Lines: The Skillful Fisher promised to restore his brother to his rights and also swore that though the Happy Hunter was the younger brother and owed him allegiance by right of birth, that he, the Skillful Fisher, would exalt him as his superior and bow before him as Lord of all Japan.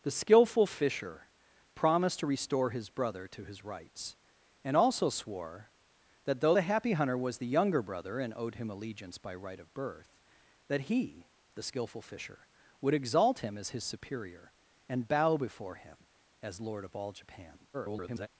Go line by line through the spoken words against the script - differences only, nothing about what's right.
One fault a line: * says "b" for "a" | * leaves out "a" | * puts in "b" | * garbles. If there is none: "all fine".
* garbles